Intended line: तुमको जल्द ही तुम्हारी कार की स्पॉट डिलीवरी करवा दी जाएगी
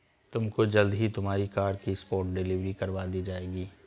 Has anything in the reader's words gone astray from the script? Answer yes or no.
no